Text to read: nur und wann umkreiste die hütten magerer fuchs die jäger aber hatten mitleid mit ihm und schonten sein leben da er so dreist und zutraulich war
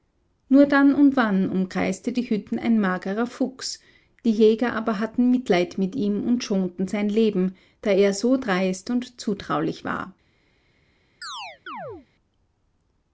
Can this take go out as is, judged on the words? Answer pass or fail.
fail